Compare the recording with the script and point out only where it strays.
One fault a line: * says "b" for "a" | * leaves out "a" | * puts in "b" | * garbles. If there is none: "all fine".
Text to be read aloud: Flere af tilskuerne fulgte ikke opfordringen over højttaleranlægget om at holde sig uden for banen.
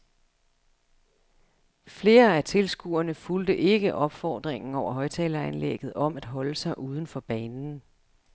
all fine